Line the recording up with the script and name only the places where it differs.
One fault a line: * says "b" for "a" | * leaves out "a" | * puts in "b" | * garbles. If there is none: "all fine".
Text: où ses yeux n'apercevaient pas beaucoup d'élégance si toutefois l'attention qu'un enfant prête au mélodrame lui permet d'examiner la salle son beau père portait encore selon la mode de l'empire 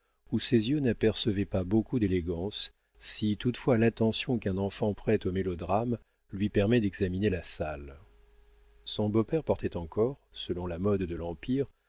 all fine